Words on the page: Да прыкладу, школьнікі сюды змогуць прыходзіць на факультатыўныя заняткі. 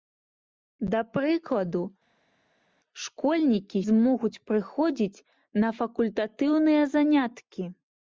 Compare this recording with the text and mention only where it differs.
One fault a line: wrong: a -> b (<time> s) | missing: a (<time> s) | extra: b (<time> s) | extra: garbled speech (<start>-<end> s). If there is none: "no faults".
missing: сюды (3.8 s)